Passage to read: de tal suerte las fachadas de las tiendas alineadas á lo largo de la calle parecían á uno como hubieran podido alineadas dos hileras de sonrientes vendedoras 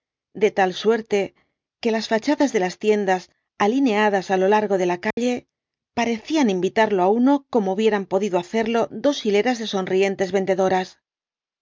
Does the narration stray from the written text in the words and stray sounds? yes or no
yes